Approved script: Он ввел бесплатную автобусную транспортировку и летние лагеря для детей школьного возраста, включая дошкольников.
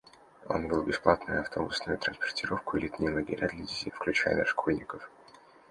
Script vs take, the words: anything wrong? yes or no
yes